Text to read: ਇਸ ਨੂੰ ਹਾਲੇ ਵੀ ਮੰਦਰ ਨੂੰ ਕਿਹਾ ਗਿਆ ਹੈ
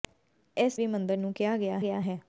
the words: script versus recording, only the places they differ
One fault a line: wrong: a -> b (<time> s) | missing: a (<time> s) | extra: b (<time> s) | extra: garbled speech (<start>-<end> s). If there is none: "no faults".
missing: ਨੂੰ ਹਾਲੇ (0.8 s)
extra: ਗਿਆ (1.8 s)